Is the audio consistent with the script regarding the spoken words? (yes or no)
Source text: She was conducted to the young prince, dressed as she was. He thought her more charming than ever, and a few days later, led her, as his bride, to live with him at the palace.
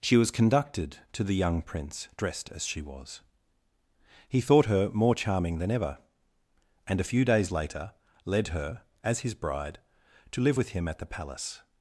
yes